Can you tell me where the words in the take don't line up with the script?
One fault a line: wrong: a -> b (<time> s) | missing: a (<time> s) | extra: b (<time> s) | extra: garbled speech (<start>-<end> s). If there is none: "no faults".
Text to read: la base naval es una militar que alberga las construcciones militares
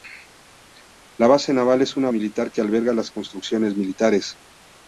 no faults